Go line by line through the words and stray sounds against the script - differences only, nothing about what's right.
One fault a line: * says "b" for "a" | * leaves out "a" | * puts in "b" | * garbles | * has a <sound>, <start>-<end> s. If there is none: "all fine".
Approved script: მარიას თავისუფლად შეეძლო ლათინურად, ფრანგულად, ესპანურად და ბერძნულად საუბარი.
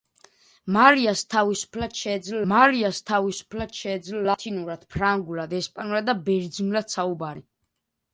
* puts in "მარიას თავისუფლად შეეძლო"